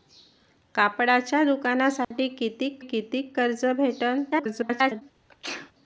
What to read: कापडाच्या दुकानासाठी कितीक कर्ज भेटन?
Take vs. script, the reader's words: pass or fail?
fail